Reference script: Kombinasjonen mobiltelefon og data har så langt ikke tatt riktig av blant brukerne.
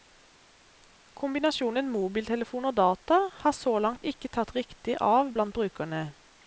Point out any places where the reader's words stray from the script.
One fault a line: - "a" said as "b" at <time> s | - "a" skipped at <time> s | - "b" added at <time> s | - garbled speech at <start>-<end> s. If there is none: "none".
none